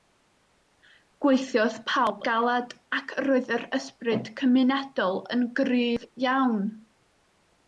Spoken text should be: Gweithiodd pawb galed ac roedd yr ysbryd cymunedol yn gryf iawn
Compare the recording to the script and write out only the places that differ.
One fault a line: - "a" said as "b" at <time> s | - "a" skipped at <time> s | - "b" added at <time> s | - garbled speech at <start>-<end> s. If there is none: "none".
none